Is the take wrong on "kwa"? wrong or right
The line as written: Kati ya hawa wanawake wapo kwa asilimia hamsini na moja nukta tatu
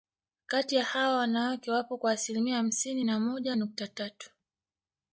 right